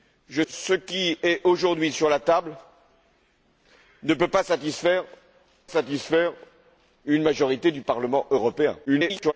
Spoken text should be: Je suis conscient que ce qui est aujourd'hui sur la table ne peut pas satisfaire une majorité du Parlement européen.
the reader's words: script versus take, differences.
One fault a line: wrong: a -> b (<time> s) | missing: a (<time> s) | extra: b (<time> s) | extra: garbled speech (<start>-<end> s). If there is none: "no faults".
missing: suis conscient que (0.4 s)
extra: satisfaire (5.7 s)
extra: garbled speech (8.9-9.3 s)